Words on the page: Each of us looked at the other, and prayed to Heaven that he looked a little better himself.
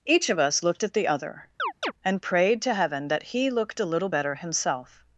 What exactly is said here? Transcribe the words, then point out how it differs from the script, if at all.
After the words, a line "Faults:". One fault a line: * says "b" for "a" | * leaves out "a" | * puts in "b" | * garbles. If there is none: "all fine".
Each of us looked at the other, and prayed to Heaven that he looked a little better himself.
Faults:
all fine